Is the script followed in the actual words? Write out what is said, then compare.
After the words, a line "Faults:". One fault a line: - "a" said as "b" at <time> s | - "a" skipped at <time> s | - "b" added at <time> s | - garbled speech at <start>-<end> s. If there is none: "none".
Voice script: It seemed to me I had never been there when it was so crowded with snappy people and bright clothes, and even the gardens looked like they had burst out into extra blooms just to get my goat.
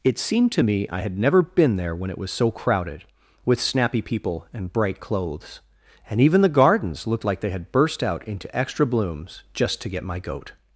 It seemed to me I had never been there when it was so crowded with snappy people and bright clothes, and even the gardens looked like they had burst out into extra blooms just to get my goat.
Faults:
none